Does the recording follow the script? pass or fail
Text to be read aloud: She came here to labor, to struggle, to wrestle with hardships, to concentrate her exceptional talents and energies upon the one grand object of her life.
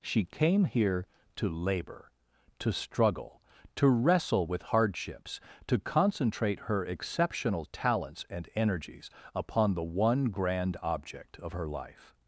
pass